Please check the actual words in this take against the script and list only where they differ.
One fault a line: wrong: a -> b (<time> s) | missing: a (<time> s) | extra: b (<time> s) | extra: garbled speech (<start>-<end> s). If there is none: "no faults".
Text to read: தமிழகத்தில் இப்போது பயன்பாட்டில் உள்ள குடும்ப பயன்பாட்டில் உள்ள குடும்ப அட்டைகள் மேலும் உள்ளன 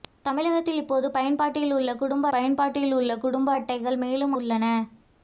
no faults